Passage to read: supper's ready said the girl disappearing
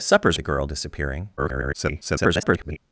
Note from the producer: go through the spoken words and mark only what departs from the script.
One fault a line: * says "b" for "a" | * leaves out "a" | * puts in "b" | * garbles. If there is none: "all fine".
* leaves out "ready said"
* garbles